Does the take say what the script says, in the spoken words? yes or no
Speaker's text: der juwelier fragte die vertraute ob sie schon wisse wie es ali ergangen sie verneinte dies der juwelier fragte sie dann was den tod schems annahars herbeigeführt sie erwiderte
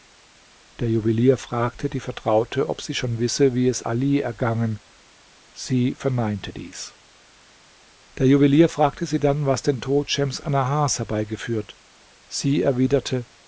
yes